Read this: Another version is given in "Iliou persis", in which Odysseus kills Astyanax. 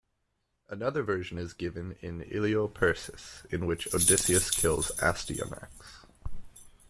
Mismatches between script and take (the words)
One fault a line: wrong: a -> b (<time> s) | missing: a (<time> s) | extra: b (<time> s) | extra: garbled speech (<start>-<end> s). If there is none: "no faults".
no faults